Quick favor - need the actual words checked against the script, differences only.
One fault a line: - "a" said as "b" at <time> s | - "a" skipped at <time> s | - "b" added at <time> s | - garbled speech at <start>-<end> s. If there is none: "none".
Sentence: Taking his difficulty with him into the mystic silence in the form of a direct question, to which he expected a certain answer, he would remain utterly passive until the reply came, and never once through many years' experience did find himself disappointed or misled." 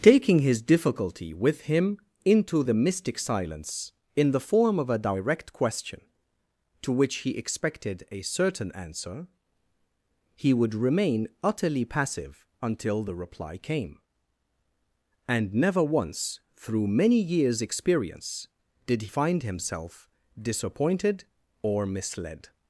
none